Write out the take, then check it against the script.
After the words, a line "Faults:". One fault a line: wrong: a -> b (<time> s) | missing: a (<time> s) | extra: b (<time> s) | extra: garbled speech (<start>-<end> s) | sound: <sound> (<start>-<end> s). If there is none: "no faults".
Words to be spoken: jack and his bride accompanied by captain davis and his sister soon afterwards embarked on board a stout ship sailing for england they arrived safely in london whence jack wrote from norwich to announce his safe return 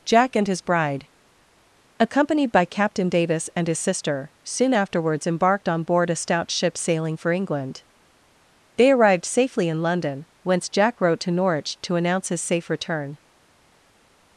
jack and his bride accompanied by captain davis and his sister soon afterwards embarked on board a stout ship sailing for england they arrived safely in london whence jack wrote to norwich to announce his safe return
Faults:
wrong: from -> to (11.2 s)